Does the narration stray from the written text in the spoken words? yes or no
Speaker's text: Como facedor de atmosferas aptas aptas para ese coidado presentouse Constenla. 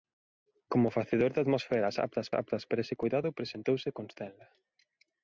no